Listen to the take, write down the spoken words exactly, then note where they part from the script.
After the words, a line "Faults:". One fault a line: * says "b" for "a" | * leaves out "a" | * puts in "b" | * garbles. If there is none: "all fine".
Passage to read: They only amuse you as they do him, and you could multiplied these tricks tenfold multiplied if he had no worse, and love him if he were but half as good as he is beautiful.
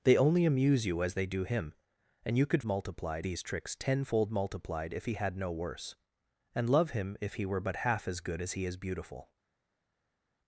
They only amuse you as they do him, and you could multiplied these tricks tenfold multiplied if he had no worse, and love him if he were but half as good as he is beautiful.
Faults:
all fine